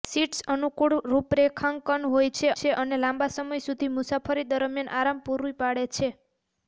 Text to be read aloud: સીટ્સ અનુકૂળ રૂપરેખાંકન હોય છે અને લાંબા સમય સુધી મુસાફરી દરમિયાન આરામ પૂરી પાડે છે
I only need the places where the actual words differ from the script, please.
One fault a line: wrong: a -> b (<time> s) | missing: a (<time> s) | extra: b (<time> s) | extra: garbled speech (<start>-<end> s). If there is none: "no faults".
extra: છે (2.5 s)